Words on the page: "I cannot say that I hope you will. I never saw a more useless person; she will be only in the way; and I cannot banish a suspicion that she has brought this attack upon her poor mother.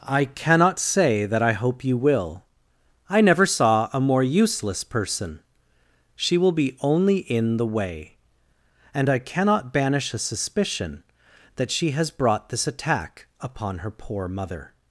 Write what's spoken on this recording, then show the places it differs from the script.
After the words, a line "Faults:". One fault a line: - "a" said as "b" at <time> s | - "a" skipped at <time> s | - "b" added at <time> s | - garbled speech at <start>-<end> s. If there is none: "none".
"I cannot say that I hope you will. I never saw a more useless person; she will be only in the way; and I cannot banish a suspicion that she has brought this attack upon her poor mother.
Faults:
none